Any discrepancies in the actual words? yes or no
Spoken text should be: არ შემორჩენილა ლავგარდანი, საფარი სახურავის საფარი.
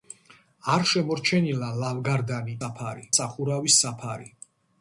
no